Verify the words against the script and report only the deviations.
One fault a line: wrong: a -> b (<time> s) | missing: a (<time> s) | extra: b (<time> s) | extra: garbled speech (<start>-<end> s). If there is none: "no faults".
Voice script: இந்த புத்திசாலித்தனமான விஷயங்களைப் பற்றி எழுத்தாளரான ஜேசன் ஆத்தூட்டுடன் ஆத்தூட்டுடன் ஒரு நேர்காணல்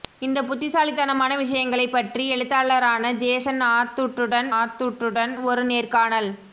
no faults